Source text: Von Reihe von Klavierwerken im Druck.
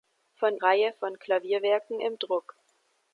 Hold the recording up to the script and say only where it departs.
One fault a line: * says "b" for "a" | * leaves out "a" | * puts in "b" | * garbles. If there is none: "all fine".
all fine